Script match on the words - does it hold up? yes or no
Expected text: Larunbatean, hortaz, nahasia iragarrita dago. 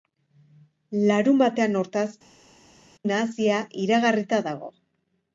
yes